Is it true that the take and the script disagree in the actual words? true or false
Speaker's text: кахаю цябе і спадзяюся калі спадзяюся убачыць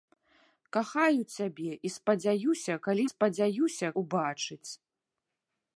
false